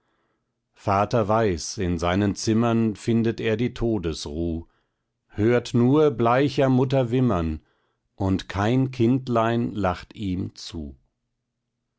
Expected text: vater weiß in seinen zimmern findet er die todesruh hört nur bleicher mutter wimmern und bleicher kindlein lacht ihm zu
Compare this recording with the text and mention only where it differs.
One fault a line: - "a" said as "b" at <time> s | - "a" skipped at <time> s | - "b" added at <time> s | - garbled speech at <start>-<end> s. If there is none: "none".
- "bleicher" said as "kein" at 8.5 s